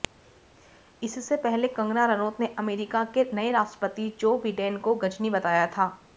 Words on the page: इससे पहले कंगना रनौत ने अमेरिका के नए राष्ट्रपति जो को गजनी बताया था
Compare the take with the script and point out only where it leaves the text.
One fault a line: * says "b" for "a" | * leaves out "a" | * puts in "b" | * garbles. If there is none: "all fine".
* puts in "बिडेन"